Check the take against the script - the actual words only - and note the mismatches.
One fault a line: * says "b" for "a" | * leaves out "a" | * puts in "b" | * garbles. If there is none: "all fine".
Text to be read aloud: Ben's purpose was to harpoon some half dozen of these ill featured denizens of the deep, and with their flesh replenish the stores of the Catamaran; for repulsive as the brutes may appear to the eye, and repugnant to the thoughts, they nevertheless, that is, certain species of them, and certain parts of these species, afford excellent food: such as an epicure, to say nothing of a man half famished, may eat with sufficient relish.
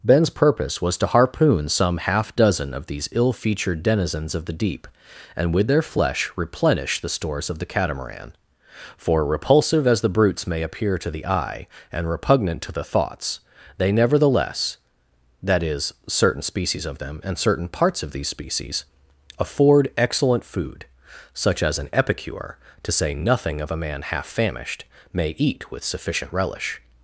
all fine